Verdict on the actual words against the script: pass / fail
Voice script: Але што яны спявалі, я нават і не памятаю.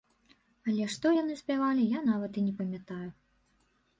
pass